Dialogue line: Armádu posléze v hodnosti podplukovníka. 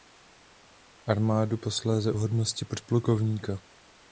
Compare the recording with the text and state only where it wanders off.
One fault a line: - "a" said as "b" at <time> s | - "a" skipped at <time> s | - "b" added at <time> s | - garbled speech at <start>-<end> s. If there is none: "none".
none